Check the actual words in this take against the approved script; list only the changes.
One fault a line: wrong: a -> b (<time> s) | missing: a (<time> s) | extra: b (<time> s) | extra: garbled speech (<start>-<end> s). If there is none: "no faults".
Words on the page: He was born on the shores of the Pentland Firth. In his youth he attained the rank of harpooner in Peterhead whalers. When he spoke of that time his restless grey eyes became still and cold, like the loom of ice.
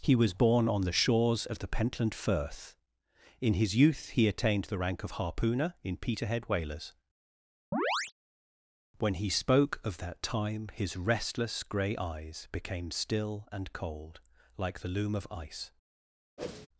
no faults